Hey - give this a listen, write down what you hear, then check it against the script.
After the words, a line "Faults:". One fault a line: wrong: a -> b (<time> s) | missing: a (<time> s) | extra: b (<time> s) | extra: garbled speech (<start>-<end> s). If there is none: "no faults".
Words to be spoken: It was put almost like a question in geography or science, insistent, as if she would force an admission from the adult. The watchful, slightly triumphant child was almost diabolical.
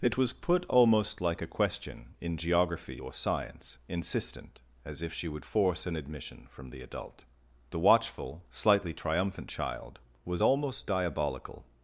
It was put almost like a question in geography or science, insistent, as if she would force an admission from the adult. The watchful, slightly triumphant child was almost diabolical.
Faults:
no faults